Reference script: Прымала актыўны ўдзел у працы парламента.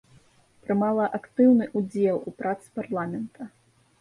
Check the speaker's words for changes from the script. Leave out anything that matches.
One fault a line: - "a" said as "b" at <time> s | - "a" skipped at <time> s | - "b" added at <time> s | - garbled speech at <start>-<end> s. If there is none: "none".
none